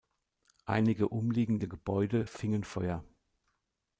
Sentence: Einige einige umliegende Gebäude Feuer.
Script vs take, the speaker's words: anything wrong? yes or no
yes